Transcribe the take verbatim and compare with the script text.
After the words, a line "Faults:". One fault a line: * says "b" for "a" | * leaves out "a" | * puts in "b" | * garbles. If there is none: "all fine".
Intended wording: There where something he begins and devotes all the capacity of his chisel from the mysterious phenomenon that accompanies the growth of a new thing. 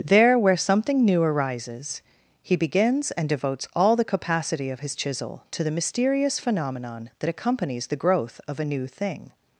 There where something new arises, he begins and devotes all the capacity of his chisel to the mysterious phenomenon that accompanies the growth of a new thing.
Faults:
* puts in "new arises"
* says "to" for "from"